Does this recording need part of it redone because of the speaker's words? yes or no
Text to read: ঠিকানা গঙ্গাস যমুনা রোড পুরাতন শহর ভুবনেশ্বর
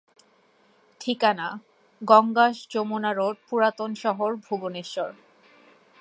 no